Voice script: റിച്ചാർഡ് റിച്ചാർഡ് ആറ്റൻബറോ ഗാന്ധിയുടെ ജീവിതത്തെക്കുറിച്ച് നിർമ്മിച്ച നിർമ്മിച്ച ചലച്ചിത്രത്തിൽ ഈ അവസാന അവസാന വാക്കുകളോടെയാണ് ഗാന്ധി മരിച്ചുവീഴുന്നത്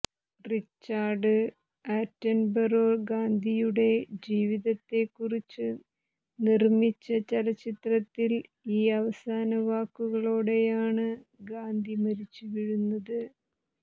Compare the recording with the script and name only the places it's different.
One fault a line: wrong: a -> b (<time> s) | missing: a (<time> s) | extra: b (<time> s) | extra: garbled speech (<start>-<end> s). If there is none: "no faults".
missing: റിച്ചാർഡ് (1.3 s)
missing: നിർമ്മിച്ച (7.0 s)
missing: അവസാന (9.5 s)